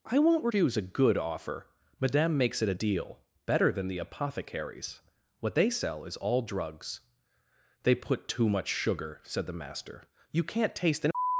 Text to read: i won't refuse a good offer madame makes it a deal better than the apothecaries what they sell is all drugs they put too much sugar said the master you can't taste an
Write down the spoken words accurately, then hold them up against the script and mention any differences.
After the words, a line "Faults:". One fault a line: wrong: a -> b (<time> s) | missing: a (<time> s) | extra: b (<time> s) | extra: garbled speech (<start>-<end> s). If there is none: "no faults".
i won't refuse a good offer madame makes it a deal better than the apothecaries what they sell is all drugs they put too much sugar said the master you can't taste an
Faults:
no faults